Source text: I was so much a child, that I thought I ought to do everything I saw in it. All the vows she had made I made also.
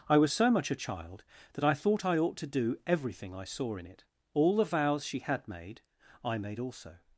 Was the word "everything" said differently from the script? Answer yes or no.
no